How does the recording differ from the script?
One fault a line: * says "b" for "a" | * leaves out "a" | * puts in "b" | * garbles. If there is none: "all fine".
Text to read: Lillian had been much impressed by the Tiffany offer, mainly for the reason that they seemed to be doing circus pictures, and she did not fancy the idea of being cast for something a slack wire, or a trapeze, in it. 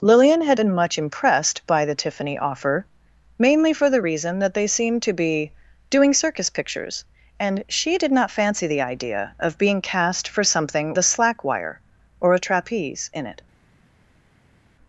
all fine